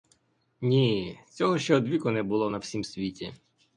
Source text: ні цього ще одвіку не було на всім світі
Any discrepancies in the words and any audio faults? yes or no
no